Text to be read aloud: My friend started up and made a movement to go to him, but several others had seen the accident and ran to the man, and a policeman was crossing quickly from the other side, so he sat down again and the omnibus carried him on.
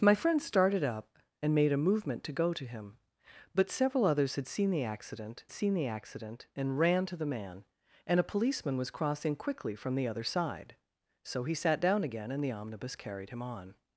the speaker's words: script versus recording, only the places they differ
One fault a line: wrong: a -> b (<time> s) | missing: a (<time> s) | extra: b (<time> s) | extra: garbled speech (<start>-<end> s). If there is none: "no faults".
extra: seen the accident (5.5 s)